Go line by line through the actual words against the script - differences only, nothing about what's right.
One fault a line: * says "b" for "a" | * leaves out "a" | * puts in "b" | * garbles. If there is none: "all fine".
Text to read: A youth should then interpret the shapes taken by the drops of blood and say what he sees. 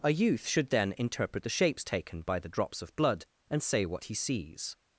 all fine